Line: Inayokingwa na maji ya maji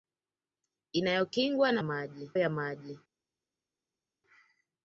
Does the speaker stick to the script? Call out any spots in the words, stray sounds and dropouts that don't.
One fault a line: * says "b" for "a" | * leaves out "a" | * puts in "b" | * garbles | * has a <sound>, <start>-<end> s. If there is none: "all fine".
all fine